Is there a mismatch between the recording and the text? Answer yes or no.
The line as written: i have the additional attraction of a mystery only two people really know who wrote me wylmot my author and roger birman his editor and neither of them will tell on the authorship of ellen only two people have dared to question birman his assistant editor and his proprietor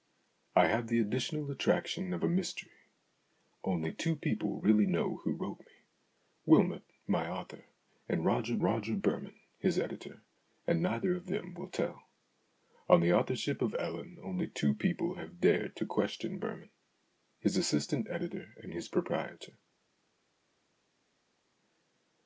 yes